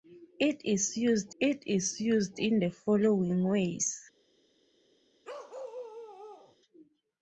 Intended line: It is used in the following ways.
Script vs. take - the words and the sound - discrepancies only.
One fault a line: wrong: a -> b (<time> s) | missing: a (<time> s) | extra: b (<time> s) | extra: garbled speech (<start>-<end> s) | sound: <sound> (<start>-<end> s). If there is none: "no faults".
extra: it is used (1.4 s)
sound: bark (5.2-6.6 s)